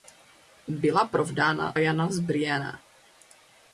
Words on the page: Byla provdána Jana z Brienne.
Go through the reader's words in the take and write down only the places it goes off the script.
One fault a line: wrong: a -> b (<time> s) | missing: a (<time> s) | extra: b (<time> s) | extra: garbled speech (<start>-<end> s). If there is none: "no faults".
no faults